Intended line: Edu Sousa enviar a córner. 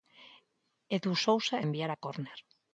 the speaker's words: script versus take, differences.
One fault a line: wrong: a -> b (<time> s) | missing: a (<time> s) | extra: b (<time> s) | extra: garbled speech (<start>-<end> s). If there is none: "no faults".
no faults